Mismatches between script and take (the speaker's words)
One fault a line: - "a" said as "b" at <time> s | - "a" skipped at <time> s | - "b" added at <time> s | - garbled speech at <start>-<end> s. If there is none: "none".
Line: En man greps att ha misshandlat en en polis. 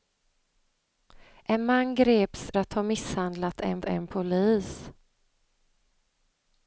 none